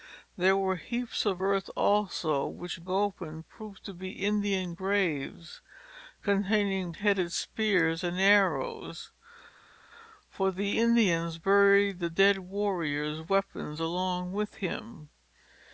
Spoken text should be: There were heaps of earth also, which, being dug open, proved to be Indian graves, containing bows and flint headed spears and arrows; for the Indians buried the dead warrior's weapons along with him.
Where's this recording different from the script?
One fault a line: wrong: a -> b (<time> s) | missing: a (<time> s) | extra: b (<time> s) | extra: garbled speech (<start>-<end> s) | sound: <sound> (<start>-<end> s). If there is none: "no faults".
missing: being dug (2.8 s)
missing: bows and flint (6.9 s)